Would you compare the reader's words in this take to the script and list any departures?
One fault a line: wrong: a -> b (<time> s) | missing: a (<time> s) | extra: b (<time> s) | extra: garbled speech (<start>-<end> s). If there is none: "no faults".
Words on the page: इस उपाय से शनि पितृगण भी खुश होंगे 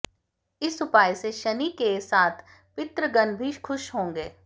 extra: के साथ (1.8 s)